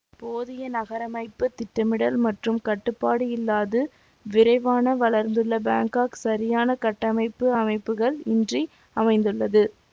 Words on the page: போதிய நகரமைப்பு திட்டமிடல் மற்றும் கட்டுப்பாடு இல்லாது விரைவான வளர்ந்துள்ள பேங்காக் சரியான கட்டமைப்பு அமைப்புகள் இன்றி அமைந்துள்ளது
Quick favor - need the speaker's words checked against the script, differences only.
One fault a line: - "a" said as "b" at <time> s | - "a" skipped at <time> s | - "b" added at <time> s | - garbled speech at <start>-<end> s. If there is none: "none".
none